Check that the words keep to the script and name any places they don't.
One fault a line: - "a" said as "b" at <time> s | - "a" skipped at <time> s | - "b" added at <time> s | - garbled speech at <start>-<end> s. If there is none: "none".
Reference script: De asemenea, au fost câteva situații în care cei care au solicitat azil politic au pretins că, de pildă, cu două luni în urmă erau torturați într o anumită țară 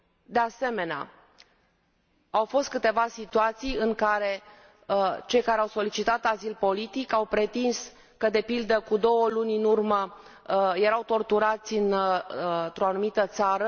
none